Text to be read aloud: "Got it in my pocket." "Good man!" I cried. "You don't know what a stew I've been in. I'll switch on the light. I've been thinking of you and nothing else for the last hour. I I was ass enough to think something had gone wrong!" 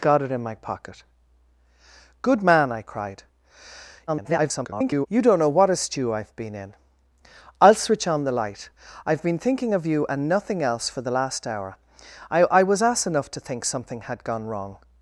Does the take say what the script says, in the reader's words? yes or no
no